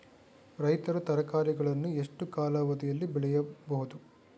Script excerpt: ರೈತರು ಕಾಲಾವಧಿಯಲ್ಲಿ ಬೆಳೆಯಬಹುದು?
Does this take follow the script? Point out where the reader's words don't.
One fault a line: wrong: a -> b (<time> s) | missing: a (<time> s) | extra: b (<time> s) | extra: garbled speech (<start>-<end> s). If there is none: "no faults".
extra: ತರಕಾರಿಗಳನ್ನು ಎಷ್ಟು (1.0 s)